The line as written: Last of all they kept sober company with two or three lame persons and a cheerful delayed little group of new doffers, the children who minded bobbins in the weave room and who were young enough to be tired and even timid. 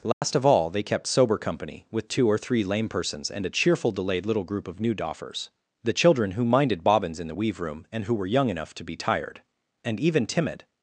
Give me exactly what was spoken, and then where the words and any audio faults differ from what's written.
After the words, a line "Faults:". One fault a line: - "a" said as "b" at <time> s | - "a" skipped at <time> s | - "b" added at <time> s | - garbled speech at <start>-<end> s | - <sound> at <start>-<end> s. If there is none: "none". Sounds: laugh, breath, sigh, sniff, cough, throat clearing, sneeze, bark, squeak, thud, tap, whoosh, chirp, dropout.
Last of all they kept sober company with two or three lame persons and a cheerful delayed little group of new doffers, the children who minded bobbins in the weave room and who were young enough to be tired and even timid.
Faults:
- dropout at 0.1-0.2 s